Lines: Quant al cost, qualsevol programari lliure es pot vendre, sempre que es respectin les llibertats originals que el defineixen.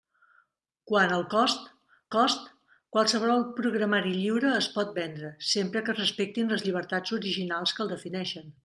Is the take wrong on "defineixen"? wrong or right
right